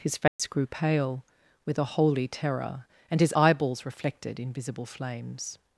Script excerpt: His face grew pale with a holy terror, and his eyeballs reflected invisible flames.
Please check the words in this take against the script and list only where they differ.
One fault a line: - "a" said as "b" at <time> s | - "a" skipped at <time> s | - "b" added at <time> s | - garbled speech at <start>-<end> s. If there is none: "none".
none